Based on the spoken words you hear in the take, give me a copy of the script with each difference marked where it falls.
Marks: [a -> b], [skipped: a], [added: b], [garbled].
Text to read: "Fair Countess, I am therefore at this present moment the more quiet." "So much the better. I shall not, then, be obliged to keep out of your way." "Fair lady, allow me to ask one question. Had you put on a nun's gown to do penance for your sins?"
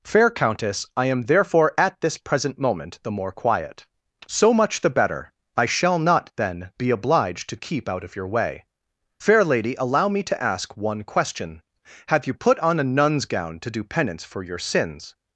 "Fair Countess, I am therefore at this present moment the more quiet." "So much the better. I shall not, then, be obliged to keep out of your way." "Fair lady, allow me to ask one question. [Had -> Have] you put on a nun's gown to do penance for your sins?"